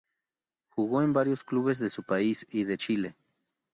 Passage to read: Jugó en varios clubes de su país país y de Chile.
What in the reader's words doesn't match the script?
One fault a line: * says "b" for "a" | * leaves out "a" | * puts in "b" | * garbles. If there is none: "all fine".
* leaves out "país"